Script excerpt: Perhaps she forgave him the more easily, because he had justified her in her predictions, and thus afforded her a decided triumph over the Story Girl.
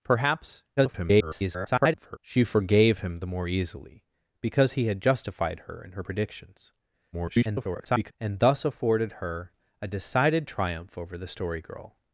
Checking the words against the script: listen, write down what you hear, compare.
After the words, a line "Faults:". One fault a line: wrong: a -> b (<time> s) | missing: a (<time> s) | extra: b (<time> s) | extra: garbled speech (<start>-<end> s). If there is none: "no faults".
Perhaps [garbled] she forgave him the more easily, because he had justified her in her predictions, [garbled] and thus afforded her a decided triumph over the Story Girl.
Faults:
extra: garbled speech (0.8-2.2 s)
extra: garbled speech (7.1-8.1 s)